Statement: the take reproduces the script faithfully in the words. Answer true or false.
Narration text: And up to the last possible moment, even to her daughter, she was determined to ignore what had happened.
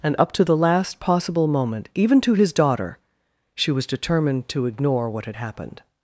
false